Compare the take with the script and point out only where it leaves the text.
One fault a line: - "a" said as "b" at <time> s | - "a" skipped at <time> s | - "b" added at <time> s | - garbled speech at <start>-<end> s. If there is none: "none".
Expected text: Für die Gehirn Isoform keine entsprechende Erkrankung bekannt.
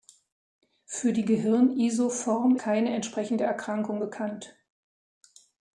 none